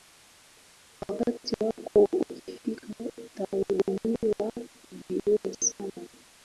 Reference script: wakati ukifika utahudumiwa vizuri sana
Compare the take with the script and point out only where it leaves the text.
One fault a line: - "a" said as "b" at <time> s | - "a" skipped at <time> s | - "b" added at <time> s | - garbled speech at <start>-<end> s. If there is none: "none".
- "wako" added at 1.6 s